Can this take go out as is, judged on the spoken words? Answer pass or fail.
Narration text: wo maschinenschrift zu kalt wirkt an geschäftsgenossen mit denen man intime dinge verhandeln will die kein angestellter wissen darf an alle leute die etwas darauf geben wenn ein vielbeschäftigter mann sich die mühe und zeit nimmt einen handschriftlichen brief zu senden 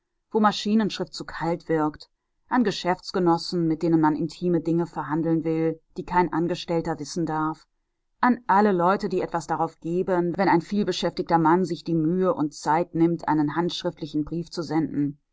pass